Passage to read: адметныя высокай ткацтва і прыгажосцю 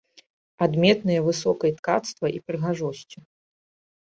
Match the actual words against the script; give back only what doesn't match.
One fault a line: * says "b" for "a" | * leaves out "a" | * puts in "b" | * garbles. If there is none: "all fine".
all fine